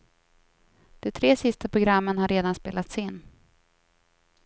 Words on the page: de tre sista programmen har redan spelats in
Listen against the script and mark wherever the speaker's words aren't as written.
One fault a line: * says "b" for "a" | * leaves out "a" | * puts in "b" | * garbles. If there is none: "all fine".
all fine